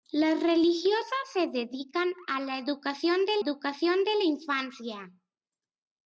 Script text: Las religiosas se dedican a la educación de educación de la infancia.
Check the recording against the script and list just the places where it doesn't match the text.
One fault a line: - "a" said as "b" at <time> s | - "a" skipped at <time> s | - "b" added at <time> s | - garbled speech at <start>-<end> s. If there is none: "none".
none